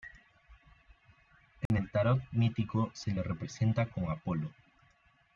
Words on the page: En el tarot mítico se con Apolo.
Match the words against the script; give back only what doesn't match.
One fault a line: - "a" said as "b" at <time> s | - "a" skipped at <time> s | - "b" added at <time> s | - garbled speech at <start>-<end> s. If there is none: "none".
- "le representa" added at 3.1 s